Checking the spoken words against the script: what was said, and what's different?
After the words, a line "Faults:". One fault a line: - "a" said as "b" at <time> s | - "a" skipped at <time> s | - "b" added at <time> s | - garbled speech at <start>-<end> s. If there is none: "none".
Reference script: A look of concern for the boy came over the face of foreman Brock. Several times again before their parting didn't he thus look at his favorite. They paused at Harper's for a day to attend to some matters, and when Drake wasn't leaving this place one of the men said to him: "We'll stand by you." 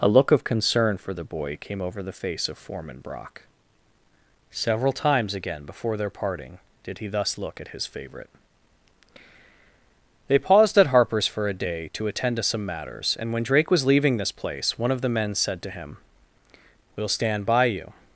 A look of concern for the boy came over the face of foreman Brock. Several times again before their parting did he thus look at his favorite. They paused at Harper's for a day to attend to some matters, and when Drake was leaving this place one of the men said to him: "We'll stand by you."
Faults:
- "didn't" said as "did" at 6.8 s
- "wasn't" said as "was" at 13.7 s